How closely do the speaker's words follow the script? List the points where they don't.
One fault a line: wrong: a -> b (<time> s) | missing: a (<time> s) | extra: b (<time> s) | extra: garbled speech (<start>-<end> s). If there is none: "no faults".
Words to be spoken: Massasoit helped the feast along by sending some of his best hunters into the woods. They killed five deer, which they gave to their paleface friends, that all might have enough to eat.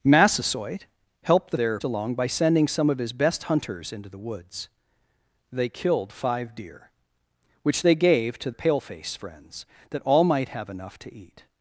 wrong: feast -> their (1.5 s)
missing: their (8.5 s)